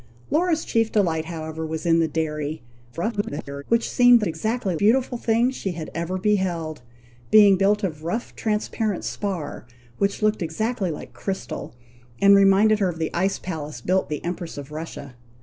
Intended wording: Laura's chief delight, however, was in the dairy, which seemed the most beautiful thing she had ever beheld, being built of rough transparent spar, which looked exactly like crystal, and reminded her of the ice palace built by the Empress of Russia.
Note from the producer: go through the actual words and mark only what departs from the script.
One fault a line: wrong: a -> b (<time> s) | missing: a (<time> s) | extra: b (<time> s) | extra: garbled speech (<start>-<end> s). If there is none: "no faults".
extra: garbled speech (2.9-3.6 s)
wrong: most -> exactly (4.3 s)
missing: by (14.1 s)